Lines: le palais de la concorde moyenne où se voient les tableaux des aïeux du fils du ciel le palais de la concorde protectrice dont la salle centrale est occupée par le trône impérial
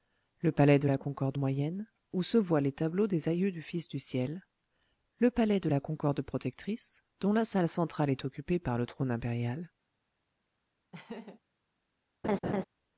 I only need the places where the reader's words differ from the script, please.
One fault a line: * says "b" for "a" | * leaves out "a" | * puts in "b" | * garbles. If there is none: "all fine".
all fine